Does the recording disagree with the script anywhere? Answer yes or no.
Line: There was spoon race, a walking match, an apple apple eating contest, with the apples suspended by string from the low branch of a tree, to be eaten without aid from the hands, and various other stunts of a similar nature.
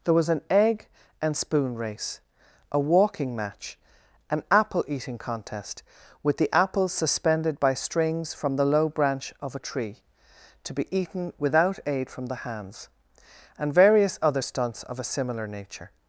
yes